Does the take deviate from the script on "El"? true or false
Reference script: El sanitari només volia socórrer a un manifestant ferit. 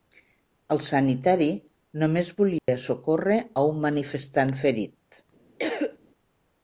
false